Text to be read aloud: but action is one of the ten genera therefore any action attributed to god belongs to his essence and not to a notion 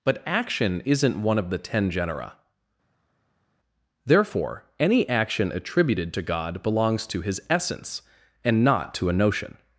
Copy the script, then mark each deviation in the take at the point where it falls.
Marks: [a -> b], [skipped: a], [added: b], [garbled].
but action [is -> isn't] one of the ten genera therefore any action attributed to god belongs to his essence and not to a notion